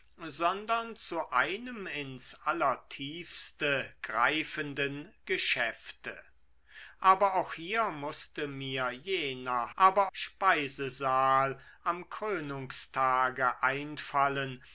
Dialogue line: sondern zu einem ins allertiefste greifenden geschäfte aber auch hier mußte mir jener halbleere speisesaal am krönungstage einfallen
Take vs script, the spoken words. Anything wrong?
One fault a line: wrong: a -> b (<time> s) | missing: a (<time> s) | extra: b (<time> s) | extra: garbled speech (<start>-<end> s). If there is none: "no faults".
wrong: halbleere -> aber (9.7 s)